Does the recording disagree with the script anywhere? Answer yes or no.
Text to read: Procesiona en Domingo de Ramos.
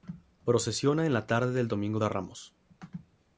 yes